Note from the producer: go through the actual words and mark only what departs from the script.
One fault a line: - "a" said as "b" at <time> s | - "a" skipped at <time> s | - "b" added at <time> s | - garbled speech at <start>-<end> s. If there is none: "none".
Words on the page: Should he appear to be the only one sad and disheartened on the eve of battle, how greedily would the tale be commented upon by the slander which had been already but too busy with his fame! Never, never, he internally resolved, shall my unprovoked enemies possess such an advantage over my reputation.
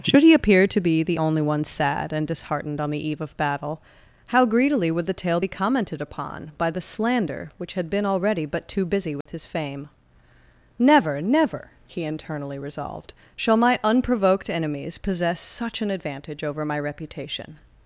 none